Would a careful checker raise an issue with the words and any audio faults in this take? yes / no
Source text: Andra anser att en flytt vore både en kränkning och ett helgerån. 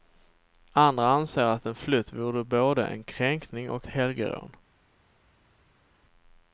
yes